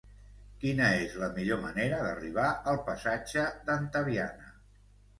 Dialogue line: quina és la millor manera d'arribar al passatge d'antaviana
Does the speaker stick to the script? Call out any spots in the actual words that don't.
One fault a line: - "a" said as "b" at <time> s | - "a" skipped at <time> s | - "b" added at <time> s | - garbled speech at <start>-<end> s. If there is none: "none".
none